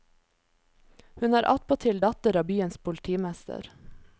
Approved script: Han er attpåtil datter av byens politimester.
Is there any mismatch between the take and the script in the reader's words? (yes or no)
yes